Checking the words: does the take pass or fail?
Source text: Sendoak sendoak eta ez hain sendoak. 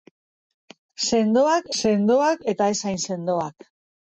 pass